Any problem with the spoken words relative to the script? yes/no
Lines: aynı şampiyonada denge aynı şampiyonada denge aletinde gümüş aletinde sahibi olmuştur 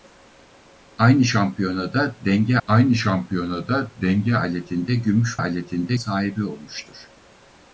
no